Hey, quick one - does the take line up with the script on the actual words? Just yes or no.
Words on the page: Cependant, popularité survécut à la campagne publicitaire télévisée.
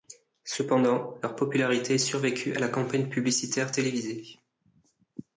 no